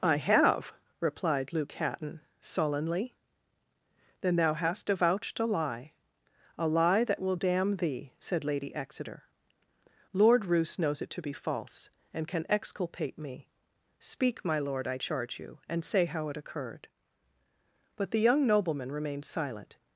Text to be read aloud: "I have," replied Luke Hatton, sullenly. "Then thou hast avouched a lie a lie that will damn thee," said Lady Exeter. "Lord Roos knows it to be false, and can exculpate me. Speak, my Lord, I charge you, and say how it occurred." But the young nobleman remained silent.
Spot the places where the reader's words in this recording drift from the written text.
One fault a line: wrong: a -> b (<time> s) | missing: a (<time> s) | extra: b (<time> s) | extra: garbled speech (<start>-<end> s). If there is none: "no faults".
no faults